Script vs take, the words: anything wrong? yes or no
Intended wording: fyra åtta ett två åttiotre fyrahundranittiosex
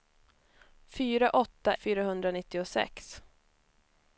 yes